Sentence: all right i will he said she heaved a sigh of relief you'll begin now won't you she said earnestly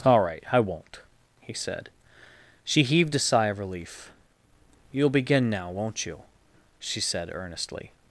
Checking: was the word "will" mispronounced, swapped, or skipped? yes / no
yes